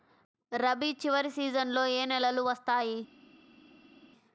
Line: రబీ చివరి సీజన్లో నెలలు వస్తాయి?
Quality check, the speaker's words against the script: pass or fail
fail